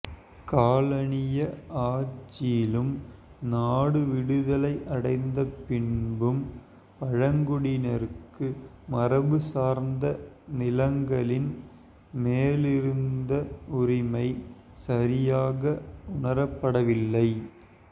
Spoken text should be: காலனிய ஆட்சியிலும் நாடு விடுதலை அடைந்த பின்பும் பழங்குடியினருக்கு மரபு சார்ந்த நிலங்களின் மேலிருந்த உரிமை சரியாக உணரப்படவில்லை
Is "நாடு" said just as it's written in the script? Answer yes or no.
yes